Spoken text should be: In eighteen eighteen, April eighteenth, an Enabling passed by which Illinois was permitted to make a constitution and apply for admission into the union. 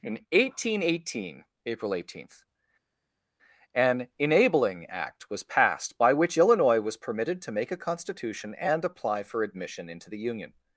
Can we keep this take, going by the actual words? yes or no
no